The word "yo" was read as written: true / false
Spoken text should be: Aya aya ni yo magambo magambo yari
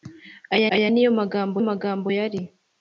true